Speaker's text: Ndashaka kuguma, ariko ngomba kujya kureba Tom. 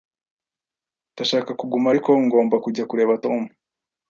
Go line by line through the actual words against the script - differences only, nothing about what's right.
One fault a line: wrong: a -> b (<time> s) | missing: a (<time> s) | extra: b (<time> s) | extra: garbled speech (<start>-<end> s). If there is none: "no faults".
no faults